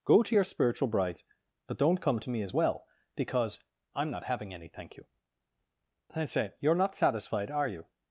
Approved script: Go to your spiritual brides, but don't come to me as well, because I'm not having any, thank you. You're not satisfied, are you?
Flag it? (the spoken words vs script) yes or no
yes